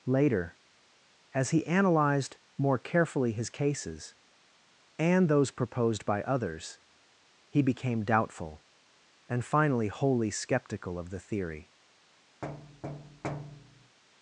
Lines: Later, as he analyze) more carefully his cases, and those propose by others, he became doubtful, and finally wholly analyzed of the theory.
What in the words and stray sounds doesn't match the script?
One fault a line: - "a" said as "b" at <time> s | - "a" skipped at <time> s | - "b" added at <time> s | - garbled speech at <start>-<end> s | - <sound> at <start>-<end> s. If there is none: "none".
- "analyze" said as "analyzed" at 1.7 s
- "propose" said as "proposed" at 5.5 s
- "analyzed" said as "skeptical" at 10.3 s
- thud at 12.4-14.0 s